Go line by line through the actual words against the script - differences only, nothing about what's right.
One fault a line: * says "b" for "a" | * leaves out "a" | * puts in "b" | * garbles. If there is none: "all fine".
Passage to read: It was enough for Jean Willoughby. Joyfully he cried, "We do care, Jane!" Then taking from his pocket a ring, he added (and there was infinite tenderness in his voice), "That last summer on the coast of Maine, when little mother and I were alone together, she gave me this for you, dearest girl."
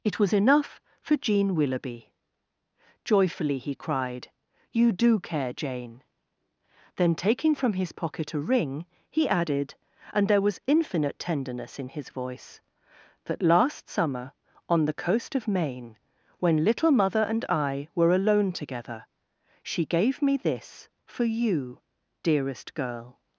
* says "You" for "We"